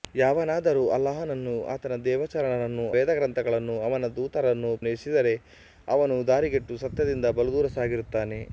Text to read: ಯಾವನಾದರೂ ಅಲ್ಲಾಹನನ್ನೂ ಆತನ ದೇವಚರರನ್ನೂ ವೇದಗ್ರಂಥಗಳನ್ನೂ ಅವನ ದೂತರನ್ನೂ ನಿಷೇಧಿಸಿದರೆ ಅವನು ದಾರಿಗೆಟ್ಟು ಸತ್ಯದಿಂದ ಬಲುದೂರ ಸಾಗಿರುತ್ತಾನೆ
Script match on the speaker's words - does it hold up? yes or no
yes